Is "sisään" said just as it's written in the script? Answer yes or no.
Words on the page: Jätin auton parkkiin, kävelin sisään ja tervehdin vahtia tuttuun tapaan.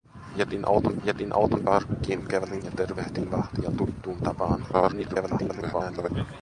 no